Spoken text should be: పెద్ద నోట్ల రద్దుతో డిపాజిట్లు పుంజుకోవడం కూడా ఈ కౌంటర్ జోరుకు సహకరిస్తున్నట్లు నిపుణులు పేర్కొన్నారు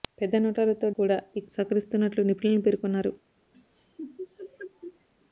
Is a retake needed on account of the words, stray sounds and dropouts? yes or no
yes